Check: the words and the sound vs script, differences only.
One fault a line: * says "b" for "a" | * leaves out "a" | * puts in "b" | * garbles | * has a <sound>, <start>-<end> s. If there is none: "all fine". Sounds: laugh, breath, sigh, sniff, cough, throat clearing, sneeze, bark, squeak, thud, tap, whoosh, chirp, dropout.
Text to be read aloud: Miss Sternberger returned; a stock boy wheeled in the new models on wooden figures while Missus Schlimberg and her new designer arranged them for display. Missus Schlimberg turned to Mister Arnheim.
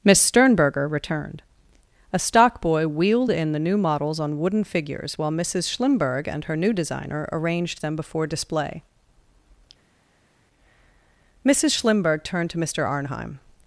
* says "before" for "for"